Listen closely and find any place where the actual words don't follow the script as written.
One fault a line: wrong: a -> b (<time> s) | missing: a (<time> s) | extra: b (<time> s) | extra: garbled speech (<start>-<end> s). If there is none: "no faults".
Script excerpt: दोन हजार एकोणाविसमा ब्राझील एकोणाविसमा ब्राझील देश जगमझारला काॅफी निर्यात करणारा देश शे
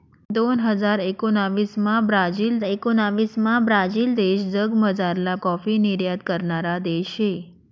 no faults